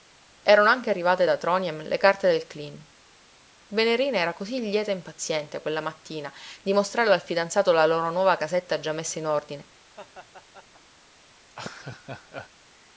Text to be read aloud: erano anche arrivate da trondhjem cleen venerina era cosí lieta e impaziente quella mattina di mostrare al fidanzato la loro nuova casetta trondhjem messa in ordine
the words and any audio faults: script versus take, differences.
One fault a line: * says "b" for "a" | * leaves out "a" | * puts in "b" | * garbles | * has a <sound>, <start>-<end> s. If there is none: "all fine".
* puts in "le carte del"
* says "già" for "trondhjem"
* has a laugh, 9.9-10.8 s
* has a laugh, 11.5-12.5 s